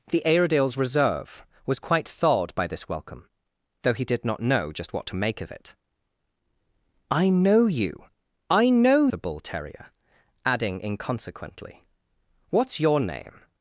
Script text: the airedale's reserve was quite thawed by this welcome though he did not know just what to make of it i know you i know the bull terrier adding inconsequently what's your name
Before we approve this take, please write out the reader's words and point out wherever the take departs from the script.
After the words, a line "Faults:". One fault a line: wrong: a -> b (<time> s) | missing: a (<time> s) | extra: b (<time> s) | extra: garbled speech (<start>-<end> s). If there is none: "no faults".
the airedale's reserve was quite thawed by this welcome though he did not know just what to make of it i know you i know the bull terrier adding inconsequently what's your name
Faults:
no faults